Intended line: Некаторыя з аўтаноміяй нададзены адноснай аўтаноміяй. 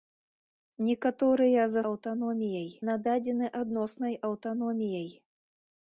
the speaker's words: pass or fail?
pass